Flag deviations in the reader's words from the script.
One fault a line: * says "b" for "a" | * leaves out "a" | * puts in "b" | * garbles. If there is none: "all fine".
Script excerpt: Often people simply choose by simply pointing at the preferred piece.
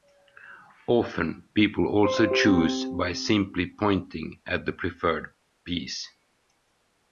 * says "also" for "simply"